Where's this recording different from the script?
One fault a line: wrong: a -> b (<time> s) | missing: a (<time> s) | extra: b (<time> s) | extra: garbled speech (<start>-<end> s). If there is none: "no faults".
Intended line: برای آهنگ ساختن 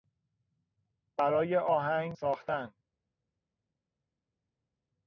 no faults